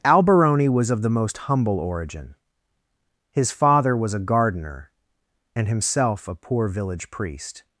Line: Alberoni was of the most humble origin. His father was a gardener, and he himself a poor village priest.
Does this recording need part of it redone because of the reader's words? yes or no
yes